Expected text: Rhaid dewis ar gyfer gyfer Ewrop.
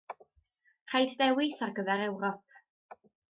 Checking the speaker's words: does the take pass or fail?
fail